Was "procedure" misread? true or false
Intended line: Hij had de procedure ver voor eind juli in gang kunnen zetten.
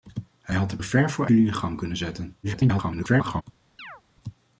true